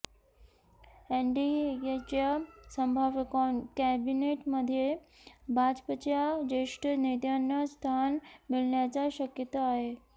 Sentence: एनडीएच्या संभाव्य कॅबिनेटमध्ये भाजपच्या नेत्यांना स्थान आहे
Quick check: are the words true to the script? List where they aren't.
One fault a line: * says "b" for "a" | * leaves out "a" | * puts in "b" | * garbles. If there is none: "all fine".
* puts in "ज्येष्ठ"
* puts in "मिळण्याची शक्यता"